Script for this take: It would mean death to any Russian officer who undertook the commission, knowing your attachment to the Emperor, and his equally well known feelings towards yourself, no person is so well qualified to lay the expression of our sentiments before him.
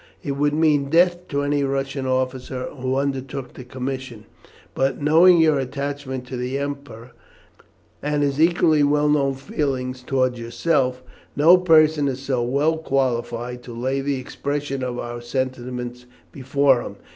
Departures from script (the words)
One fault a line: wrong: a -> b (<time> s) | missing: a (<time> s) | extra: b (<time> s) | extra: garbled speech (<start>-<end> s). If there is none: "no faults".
extra: but (4.7 s)